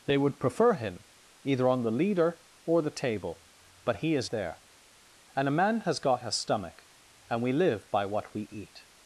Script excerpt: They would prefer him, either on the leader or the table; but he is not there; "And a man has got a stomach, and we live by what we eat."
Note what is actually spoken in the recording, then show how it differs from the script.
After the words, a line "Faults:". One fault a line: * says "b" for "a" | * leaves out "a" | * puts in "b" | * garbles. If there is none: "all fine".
They would prefer him, either on the leader or the table; but he is there; "And a man has got a stomach, and we live by what we eat."
Faults:
* leaves out "not"